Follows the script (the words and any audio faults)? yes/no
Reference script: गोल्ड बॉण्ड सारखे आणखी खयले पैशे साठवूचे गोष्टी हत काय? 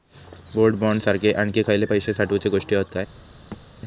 no